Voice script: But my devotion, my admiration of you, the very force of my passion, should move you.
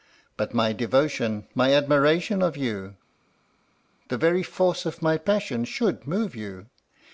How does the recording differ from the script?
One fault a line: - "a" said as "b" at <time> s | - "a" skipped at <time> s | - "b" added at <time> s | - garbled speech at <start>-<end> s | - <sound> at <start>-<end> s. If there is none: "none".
none